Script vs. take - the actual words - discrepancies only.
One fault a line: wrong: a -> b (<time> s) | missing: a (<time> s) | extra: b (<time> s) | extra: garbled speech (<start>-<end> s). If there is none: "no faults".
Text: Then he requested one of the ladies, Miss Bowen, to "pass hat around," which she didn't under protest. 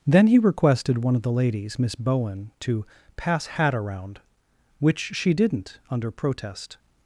no faults